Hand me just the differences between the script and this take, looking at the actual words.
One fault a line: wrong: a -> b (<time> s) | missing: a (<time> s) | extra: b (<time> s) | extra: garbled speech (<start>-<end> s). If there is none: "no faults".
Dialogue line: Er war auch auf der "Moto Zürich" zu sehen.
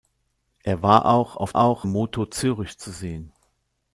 wrong: der -> auch (1.6 s)